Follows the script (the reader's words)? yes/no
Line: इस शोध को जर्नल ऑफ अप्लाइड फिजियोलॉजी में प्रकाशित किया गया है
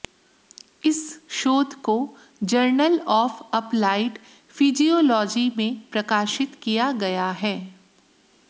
yes